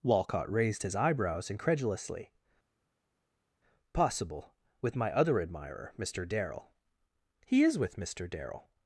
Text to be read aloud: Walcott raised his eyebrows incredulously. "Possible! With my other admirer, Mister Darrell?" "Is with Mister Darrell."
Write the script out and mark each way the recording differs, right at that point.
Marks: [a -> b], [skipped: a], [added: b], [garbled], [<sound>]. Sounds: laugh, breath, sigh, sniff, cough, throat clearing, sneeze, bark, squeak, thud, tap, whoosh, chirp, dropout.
Walcott raised his eyebrows incredulously. "Possible! With my other admirer, Mister Darrell?" [added: He] "Is with Mister Darrell."